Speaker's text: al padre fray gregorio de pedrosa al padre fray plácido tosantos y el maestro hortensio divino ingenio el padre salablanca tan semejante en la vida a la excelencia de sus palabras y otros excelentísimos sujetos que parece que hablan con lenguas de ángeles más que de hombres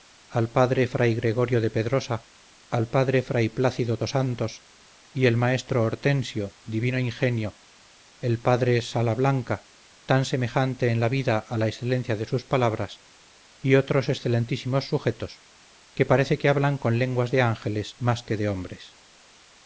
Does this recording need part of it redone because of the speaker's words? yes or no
no